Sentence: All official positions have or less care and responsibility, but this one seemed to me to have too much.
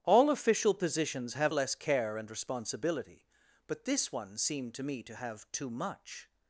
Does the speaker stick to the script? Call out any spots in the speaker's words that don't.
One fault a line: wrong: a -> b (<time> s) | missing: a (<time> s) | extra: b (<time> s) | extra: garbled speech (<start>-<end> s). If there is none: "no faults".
no faults